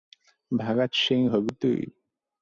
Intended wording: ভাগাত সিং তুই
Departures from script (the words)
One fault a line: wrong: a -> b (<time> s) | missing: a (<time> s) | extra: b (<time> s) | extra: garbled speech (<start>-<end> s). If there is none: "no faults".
extra: হবি (1.3 s)